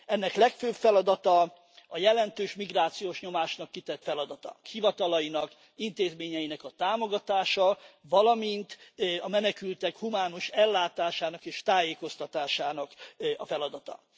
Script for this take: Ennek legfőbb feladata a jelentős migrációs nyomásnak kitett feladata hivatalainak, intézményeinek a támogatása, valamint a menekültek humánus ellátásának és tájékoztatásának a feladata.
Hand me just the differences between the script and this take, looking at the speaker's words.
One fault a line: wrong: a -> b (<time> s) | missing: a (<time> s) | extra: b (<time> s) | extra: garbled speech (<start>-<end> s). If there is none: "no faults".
no faults